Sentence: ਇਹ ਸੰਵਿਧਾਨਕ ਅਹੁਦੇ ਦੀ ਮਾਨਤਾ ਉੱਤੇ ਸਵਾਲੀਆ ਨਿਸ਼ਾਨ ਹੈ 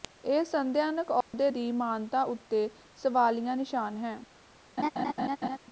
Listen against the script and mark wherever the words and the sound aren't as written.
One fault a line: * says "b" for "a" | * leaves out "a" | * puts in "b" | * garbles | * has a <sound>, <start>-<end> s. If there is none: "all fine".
* has a dropout, 1.2-1.3 s
* has a laugh, 4.8-5.6 s